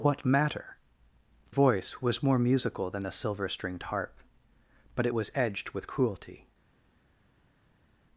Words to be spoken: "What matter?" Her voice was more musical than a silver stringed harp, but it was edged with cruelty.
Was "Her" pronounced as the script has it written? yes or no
no